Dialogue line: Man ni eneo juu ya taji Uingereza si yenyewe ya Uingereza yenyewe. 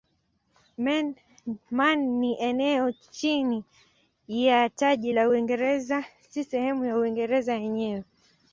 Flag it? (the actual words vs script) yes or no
yes